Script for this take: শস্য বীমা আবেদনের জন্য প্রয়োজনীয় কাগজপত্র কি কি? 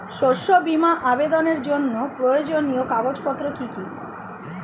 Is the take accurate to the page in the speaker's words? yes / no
yes